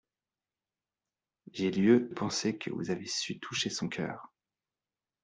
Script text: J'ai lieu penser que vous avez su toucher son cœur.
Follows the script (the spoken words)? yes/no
yes